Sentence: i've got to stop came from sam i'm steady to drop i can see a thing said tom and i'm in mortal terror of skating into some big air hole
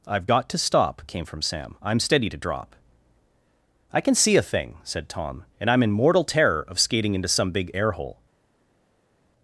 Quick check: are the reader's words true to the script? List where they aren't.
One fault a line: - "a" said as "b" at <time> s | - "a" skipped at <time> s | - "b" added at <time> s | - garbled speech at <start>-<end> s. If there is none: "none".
none